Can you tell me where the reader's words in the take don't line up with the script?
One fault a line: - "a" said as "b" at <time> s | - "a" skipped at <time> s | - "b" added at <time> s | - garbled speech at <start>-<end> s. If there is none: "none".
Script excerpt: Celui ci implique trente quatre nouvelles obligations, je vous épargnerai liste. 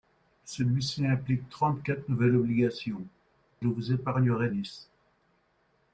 none